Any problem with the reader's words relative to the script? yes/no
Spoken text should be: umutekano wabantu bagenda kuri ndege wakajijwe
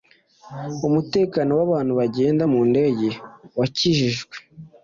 yes